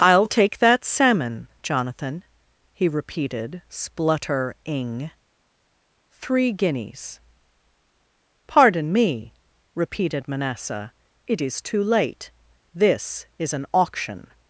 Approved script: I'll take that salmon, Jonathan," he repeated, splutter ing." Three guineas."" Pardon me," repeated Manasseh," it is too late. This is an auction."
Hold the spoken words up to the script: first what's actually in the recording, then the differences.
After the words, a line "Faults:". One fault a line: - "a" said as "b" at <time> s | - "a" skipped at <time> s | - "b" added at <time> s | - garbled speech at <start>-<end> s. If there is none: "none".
I'll take that salmon, Jonathan," he repeated, splutter ing." Three guineas."" Pardon me," repeated Manasseh," it is too late. This is an auction."
Faults:
none